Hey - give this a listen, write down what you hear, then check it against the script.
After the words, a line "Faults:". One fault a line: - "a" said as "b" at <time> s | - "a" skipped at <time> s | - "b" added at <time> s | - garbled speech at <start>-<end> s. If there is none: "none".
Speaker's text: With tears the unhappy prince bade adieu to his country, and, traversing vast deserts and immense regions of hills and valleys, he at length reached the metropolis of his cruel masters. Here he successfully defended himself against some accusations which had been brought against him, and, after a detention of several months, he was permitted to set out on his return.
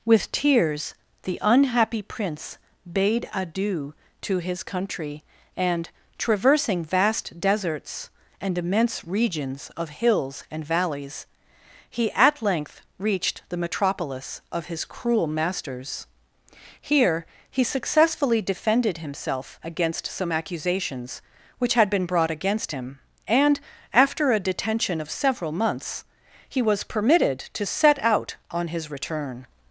With tears the unhappy prince bade adieu to his country, and, traversing vast deserts and immense regions of hills and valleys, he at length reached the metropolis of his cruel masters. Here he successfully defended himself against some accusations which had been brought against him, and, after a detention of several months, he was permitted to set out on his return.
Faults:
none